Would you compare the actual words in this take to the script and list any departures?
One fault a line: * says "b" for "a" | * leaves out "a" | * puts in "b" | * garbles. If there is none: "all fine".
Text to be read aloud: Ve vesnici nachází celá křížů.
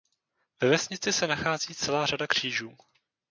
* puts in "se"
* puts in "řada"